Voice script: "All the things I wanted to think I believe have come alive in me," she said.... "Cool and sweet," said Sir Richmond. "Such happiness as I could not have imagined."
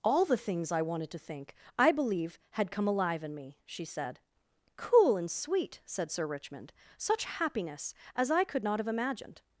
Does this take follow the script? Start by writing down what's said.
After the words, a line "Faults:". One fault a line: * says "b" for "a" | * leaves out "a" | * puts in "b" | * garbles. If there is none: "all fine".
"All the things I wanted to think I believe had come alive in me," she said.... "Cool and sweet," said Sir Richmond. "Such happiness as I could not have imagined."
Faults:
* says "had" for "have"